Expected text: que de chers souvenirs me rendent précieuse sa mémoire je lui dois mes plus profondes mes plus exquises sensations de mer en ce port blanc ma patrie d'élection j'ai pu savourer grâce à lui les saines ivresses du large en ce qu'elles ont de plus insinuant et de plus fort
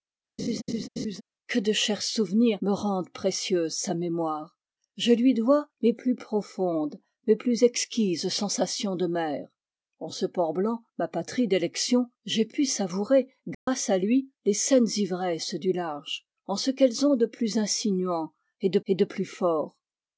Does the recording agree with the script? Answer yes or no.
no